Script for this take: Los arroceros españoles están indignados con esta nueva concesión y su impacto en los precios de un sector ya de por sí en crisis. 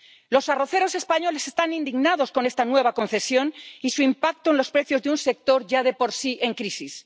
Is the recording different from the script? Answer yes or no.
no